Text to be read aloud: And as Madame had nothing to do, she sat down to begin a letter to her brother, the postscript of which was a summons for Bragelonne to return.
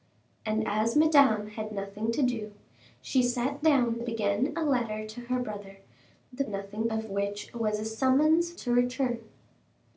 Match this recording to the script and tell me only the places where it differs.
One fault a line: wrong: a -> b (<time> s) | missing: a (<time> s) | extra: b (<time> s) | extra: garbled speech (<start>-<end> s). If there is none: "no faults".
missing: to (4.0 s)
wrong: postscript -> nothing (6.5 s)
missing: for Bragelonne (8.5 s)